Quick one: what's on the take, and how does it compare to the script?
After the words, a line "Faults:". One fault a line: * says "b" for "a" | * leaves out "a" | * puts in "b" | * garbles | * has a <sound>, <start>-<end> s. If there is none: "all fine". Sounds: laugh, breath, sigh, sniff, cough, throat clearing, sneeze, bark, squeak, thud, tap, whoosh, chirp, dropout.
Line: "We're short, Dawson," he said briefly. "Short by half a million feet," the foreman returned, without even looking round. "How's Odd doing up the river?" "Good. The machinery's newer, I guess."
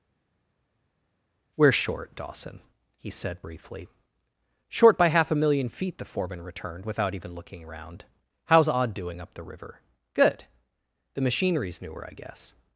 "We're short, Dawson," he said briefly. "Short by half a million feet," the foreman returned, without even looking around. "How's Odd doing up the river?" "Good. The machinery's newer, I guess."
Faults:
* says "around" for "round"